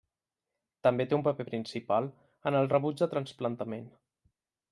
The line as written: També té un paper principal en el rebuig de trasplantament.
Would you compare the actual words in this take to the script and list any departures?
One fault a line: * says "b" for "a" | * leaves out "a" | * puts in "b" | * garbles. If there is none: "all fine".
all fine